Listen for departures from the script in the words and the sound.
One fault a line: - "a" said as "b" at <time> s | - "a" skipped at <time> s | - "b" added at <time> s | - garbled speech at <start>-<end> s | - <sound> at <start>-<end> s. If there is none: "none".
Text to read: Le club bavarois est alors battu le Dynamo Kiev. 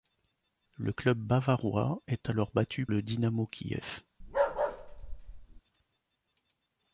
- bark at 4.2-5.6 s